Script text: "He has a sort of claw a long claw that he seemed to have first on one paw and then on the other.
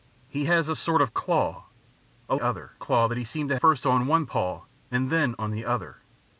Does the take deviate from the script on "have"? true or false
true